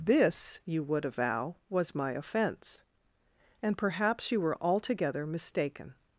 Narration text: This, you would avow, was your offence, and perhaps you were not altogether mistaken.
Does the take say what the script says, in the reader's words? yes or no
no